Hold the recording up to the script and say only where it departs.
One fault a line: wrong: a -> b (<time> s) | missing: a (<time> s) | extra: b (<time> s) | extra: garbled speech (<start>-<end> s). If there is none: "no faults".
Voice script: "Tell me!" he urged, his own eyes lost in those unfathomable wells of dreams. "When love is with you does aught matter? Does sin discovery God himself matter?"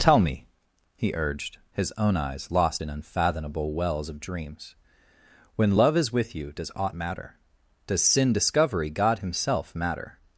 missing: those (2.9 s)